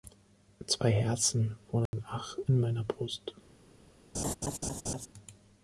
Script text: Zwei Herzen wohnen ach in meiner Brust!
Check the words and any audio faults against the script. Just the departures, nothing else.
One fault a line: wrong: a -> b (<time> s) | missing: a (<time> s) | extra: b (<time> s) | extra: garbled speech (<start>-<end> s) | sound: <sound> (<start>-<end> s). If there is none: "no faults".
sound: dropout (1.9-1.9 s)
sound: laugh (4.1-5.1 s)